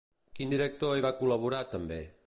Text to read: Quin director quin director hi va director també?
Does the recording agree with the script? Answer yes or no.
no